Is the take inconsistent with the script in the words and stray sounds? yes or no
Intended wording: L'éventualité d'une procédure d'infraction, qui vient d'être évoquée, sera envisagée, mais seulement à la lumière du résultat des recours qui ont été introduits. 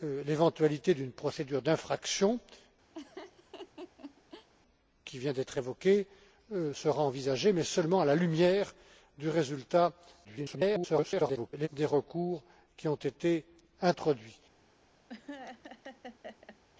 yes